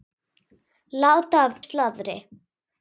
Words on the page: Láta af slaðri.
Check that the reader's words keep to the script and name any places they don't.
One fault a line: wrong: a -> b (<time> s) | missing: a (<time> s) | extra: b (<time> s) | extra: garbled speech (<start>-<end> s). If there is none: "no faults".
no faults